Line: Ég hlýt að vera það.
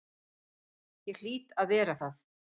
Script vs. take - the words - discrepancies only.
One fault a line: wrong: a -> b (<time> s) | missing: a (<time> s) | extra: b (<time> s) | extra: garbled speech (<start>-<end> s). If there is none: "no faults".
no faults